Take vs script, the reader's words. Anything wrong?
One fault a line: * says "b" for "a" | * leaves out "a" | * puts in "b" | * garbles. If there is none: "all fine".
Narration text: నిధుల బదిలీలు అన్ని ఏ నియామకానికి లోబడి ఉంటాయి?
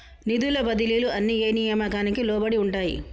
all fine